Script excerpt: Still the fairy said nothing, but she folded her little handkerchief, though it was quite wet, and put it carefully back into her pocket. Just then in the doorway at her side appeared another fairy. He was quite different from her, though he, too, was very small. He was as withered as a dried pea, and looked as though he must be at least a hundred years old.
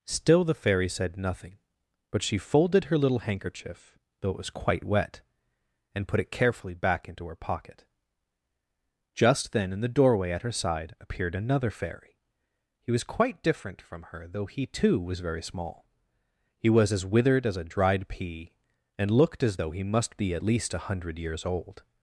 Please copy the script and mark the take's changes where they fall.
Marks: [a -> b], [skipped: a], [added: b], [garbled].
Still the fairy said nothing, but she folded her little handkerchief, though it was quite wet, and put it carefully back into her pocket. Just then in the doorway at her side appeared another fairy. He was quite different from her, though he, too, was very small. He was as withered as a dried pea, and looked as though he must be at least a hundred years old.